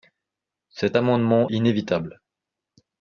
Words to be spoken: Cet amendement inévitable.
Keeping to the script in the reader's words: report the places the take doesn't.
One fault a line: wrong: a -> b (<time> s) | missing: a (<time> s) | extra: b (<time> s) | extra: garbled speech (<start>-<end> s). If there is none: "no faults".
no faults